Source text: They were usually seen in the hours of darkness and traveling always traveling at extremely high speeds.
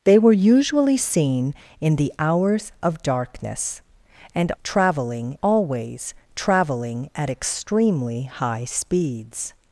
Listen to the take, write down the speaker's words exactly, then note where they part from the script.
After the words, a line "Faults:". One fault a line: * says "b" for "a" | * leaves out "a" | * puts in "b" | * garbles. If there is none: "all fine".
They were usually seen in the hours of darkness and traveling always traveling at extremely high speeds.
Faults:
all fine